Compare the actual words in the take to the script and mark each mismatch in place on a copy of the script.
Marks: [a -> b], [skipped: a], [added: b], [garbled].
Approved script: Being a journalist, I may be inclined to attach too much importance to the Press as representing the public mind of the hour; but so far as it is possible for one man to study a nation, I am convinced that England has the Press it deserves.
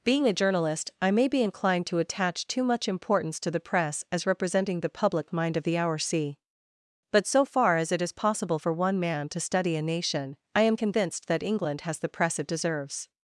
Being a journalist, I may be inclined to attach too much importance to the Press as representing the public mind of the hour; [added: c] but so far as it is possible for one man to study a nation, I am convinced that England has the Press it deserves.